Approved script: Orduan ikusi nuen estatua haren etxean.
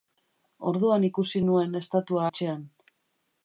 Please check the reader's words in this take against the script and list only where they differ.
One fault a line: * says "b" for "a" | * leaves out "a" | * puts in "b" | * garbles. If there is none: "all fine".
* leaves out "haren"